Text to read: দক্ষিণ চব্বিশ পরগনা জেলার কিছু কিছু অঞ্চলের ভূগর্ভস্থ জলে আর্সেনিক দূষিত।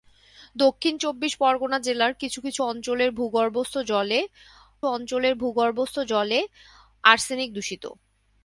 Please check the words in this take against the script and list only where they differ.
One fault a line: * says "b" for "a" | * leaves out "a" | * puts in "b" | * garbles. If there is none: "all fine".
* puts in "অঞ্চলের ভূগর্ভস্থ জলে"